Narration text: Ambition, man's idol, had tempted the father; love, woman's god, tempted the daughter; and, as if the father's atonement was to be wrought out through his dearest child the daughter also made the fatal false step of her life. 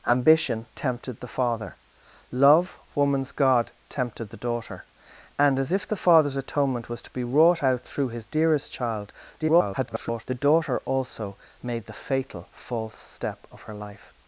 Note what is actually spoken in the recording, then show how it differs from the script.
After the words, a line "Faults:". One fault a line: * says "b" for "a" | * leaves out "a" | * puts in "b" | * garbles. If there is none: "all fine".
Ambition, tempted the father; love, woman's god, tempted the daughter; and, as if the father's atonement was to be wrought out through his dearest child [garbled] the daughter also made the fatal false step of her life.
Faults:
* leaves out "man's idol had"
* garbles